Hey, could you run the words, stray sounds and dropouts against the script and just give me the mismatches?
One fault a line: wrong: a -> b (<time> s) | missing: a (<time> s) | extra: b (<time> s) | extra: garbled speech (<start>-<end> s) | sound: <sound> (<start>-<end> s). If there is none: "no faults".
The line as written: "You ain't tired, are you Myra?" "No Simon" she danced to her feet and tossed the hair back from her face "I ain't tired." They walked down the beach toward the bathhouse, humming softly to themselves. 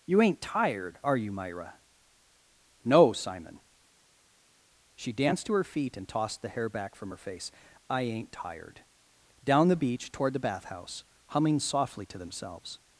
missing: They walked (8.8 s)